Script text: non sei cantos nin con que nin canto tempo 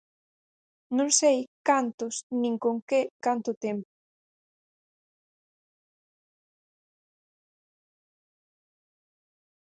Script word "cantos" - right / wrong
right